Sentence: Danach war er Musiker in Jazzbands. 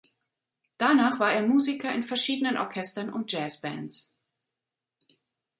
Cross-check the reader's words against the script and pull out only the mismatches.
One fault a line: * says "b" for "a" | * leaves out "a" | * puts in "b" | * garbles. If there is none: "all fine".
* puts in "verschiedenen Orchestern und"